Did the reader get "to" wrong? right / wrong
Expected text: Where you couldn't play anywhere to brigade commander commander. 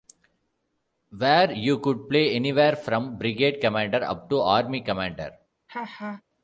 wrong